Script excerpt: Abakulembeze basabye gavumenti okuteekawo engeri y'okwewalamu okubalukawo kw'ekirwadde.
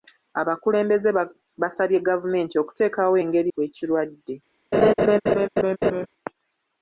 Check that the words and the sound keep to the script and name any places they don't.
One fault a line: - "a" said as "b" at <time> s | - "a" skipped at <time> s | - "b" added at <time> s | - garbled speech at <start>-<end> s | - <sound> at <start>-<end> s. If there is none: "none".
- "y'okwewalamu okubalukawo" skipped at 3.5 s
- laugh at 4.7-6.1 s